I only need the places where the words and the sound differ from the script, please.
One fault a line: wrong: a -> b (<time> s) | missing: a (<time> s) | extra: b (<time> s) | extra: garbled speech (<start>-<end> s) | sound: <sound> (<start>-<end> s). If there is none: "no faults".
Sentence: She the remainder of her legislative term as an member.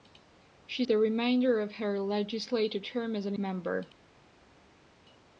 no faults